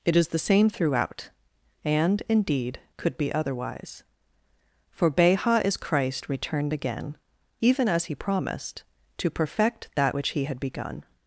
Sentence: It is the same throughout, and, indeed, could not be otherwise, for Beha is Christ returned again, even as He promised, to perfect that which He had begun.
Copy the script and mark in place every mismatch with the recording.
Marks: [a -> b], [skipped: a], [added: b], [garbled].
It is the same throughout, and, indeed, could [skipped: not] be otherwise, for Beha is Christ returned again, even as He promised, to perfect that which He had begun.